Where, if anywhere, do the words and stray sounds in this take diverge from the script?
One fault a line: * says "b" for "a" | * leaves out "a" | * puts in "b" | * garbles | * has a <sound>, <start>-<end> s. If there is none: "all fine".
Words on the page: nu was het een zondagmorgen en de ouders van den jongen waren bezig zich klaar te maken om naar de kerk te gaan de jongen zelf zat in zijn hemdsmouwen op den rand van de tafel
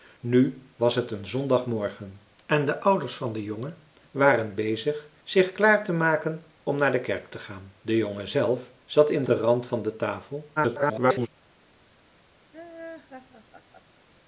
* leaves out "zijn hemdsmouwen op"
* garbles
* has a laugh, 12.5-14.0 s